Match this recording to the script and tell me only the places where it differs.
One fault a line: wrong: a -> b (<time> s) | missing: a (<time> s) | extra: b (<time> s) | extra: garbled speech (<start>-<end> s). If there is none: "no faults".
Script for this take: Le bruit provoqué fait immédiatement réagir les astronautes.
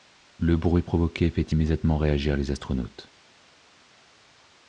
no faults